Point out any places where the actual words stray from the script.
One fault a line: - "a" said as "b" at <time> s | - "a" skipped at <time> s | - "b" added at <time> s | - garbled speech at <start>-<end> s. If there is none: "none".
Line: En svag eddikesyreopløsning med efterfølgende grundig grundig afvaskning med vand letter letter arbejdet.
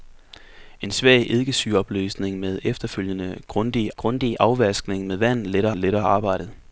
none